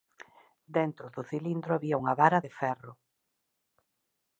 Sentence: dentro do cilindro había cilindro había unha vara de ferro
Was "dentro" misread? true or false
false